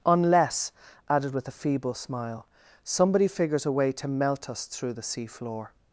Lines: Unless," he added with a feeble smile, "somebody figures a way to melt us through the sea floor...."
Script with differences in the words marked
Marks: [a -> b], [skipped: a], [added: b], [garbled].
Unless," [skipped: he] added with a feeble smile, "somebody figures a way to melt us through the sea floor...."